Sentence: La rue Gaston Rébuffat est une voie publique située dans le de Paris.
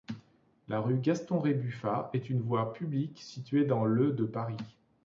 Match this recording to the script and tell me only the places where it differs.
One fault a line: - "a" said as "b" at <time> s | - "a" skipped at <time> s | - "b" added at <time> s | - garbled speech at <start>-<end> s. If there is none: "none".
none